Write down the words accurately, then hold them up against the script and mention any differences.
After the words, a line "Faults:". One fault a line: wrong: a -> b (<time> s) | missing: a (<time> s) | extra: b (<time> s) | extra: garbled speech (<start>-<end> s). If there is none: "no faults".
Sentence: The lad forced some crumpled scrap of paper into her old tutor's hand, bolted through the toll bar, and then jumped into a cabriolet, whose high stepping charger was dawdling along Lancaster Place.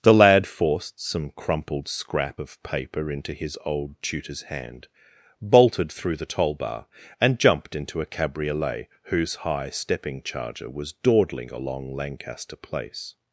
The lad forced some crumpled scrap of paper into his old tutor's hand, bolted through the toll bar, and jumped into a cabriolet, whose high stepping charger was dawdling along Lancaster Place.
Faults:
wrong: her -> his (3.3 s)
missing: then (7.4 s)